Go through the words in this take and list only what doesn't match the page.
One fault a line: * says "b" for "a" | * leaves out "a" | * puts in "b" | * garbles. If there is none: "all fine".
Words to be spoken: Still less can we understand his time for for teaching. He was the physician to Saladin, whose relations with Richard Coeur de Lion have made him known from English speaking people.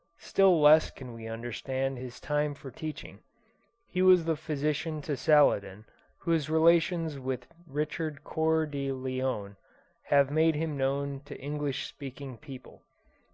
* leaves out "for"
* says "to" for "from"